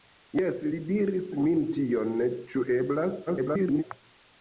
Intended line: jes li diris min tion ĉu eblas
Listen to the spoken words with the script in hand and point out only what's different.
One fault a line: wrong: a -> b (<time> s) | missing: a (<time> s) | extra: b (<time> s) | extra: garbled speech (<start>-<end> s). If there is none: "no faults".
extra: garbled speech (3.3-3.8 s)